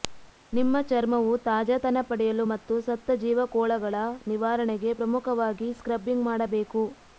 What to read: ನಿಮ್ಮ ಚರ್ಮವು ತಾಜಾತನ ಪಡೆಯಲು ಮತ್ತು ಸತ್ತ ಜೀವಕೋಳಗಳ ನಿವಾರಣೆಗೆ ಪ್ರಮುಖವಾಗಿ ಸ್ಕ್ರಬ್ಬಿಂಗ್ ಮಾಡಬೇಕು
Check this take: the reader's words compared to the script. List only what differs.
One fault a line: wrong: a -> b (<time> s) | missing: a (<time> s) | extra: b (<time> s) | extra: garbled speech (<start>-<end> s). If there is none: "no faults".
no faults